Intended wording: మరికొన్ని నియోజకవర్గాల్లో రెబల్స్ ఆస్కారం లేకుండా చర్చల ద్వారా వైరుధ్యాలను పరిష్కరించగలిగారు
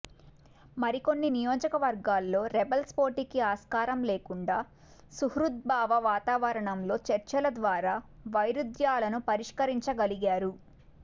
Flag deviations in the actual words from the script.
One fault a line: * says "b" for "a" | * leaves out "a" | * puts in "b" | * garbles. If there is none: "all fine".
* puts in "పోటీకి"
* puts in "సుహృద్భావ వాతావరణంలో"